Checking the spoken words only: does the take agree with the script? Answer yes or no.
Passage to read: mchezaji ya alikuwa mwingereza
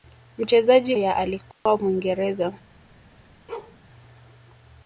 yes